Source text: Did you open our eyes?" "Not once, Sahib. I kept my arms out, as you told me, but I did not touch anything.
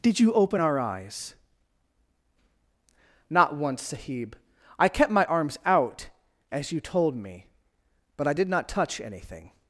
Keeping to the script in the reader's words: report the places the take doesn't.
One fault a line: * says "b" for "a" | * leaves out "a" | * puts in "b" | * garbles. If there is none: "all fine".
all fine